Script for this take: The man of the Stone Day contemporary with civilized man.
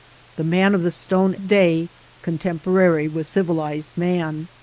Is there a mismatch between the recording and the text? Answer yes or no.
no